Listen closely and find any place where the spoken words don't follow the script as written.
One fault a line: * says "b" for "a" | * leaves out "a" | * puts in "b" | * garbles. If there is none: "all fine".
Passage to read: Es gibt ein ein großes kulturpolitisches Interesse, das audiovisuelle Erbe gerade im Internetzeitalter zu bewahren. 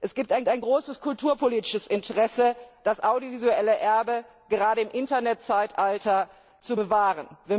all fine